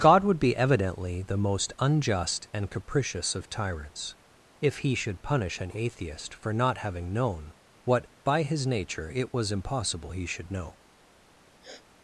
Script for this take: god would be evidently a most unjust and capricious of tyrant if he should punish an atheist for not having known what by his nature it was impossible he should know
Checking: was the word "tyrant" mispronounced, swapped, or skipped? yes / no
yes